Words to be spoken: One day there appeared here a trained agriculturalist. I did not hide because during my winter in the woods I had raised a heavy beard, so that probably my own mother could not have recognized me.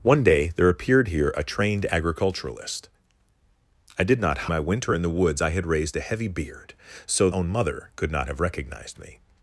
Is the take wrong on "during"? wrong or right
wrong